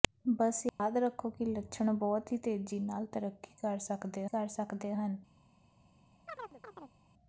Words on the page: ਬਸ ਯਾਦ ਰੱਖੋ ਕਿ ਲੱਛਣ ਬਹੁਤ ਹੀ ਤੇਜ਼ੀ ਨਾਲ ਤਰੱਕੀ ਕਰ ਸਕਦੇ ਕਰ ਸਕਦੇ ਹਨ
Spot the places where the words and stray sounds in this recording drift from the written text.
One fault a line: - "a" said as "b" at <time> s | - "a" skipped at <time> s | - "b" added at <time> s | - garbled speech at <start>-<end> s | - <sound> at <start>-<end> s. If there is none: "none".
- dropout at 0.7-0.8 s
- chirp at 6.3-7.0 s